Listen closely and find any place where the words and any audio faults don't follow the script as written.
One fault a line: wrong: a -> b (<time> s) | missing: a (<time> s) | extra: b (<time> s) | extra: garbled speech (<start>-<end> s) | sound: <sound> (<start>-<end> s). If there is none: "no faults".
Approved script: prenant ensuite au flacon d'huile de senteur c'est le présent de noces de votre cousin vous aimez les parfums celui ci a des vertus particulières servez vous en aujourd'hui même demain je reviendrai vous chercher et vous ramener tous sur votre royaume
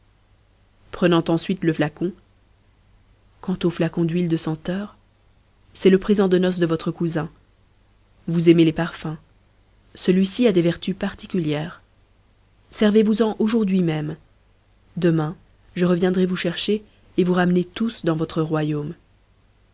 extra: le flacon quant (1.6 s)
wrong: sur -> dans (18.1 s)